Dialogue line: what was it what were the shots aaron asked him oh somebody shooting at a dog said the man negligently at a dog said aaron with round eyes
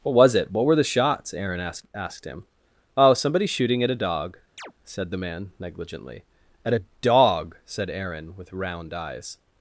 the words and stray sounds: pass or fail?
fail